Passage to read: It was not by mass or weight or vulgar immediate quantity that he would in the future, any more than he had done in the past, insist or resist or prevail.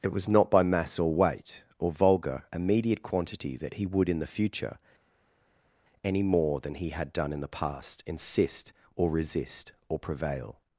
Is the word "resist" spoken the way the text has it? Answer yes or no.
yes